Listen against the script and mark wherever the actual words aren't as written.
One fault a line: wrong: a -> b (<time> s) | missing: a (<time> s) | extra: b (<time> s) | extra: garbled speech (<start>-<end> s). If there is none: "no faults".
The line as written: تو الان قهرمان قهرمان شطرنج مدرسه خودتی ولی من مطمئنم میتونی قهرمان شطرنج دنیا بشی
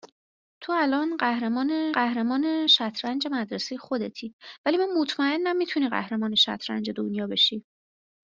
no faults